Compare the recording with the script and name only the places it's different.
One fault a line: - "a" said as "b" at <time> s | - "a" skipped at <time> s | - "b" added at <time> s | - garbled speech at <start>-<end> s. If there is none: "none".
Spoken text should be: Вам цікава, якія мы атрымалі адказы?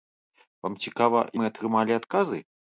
- "якія" skipped at 1.2 s